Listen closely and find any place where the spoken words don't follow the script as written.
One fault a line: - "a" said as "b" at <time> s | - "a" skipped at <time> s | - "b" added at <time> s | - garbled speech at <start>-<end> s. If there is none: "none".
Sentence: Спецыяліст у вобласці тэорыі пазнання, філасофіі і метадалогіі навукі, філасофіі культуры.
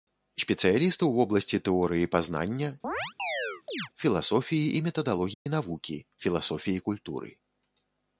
none